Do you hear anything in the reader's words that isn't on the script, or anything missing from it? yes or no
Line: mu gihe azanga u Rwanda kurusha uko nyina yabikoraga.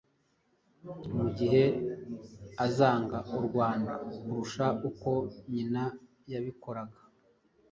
no